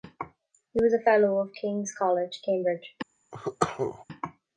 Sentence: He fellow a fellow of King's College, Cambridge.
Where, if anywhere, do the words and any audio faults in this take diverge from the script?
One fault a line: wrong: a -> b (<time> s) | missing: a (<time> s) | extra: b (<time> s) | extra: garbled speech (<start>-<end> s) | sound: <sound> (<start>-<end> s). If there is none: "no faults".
wrong: fellow -> was (0.8 s)
sound: cough (3.3-4.1 s)